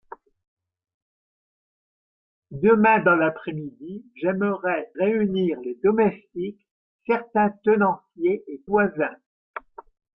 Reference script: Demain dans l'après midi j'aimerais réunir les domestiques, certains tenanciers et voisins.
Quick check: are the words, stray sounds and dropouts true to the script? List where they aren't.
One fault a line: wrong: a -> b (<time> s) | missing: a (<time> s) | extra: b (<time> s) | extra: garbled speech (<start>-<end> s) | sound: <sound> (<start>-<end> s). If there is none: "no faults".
no faults